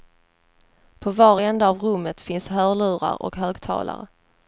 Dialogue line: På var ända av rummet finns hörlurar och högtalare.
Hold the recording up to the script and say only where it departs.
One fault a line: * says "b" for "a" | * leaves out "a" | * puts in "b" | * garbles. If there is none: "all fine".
all fine